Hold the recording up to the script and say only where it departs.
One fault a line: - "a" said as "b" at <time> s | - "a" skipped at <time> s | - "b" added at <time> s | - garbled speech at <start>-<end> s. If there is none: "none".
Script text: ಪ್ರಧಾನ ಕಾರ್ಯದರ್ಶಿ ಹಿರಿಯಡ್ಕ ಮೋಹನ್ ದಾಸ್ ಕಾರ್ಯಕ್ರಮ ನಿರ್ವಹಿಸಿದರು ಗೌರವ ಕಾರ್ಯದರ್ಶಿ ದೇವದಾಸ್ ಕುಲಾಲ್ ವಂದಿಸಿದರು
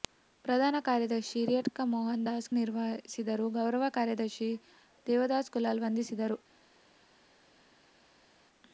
- "ಕಾರ್ಯಕ್ರಮ" skipped at 2.5 s